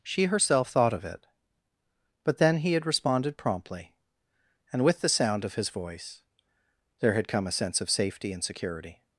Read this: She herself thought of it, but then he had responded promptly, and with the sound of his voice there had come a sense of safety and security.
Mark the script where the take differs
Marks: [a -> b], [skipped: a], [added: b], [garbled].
She herself thought of it, but then he had responded promptly, and with the sound of his voice there had come a sense of safety and security.